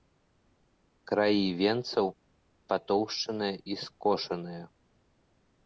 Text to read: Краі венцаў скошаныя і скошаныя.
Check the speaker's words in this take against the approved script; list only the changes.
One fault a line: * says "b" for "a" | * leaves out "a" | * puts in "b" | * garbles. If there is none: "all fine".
* says "патоўшчаныя" for "скошаныя"